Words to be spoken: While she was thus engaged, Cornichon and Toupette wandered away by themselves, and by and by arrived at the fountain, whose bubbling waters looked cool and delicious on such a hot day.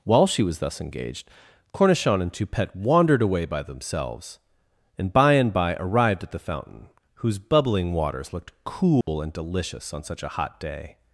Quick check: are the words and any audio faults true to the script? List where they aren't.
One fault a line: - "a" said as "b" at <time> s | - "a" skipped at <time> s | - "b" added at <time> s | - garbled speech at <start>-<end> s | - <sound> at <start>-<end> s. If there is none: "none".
- dropout at 9.0-9.1 s